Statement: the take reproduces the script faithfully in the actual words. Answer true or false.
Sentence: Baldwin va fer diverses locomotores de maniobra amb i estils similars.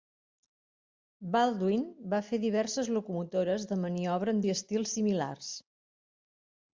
true